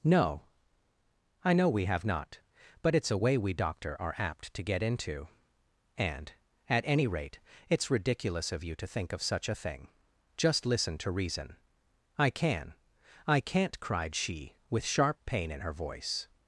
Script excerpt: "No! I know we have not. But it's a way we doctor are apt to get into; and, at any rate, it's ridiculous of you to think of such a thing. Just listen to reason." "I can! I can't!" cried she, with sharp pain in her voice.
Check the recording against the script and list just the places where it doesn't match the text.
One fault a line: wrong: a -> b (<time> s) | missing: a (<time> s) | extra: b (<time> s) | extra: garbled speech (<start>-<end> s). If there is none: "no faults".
no faults